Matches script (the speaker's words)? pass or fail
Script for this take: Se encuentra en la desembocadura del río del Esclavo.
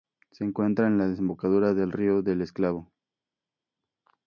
pass